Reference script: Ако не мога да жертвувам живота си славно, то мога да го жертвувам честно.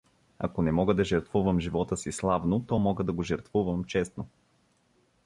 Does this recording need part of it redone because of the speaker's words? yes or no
no